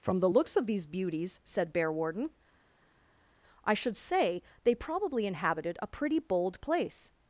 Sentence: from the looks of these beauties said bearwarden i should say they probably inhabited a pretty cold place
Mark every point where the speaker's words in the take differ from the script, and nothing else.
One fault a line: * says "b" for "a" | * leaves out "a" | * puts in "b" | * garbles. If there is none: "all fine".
* says "bold" for "cold"